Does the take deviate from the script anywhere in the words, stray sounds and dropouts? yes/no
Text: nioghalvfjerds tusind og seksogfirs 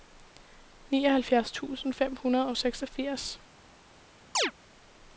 yes